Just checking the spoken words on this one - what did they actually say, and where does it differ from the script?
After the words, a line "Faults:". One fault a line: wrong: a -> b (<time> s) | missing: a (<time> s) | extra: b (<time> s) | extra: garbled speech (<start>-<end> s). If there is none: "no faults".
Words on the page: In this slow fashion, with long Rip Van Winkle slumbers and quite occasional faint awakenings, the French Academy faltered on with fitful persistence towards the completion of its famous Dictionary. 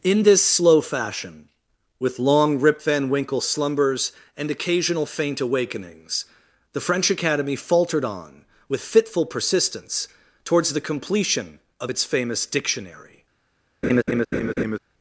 In this slow fashion, with long Rip Van Winkle slumbers and occasional faint awakenings, the French Academy faltered on with fitful persistence towards the completion of its famous Dictionary.
Faults:
missing: quite (4.5 s)